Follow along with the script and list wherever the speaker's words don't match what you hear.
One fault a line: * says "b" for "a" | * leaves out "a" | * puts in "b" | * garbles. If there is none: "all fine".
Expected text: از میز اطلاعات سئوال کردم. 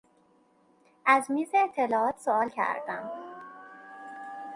all fine